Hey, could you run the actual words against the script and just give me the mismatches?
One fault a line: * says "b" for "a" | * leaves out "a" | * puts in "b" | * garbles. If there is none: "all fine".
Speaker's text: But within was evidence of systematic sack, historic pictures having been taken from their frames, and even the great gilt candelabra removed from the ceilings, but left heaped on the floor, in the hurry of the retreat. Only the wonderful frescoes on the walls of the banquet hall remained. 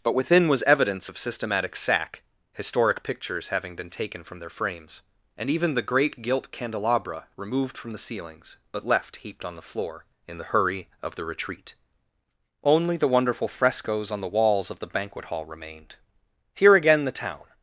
* puts in "Here again the town"